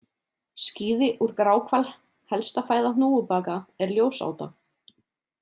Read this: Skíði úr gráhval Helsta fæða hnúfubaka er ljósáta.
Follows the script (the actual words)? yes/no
yes